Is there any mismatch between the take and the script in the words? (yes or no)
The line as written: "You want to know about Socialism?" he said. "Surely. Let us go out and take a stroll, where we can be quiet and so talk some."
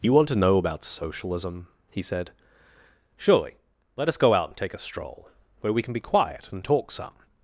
yes